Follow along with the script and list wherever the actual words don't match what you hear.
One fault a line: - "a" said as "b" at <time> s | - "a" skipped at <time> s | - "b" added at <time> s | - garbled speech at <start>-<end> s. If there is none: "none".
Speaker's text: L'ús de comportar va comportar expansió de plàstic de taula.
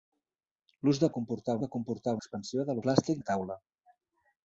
none